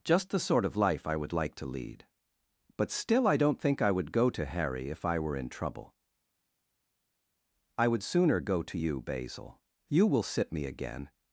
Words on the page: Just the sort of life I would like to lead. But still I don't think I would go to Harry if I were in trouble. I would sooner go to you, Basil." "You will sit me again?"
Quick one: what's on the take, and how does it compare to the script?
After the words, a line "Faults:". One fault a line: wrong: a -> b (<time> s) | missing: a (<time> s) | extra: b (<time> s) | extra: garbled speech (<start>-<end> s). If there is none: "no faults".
Just the sort of life I would like to lead. But still I don't think I would go to Harry if I were in trouble. I would sooner go to you, Basil." "You will sit me again?"
Faults:
no faults